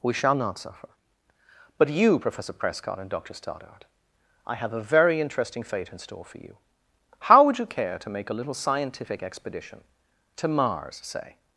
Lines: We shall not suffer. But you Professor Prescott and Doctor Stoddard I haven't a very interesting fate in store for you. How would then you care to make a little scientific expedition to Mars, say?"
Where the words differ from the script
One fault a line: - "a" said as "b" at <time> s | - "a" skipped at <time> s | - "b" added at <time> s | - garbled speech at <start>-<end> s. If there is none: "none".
- "haven't" said as "have" at 4.5 s
- "then" skipped at 7.6 s